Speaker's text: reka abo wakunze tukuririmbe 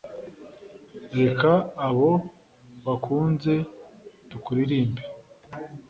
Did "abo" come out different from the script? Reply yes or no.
no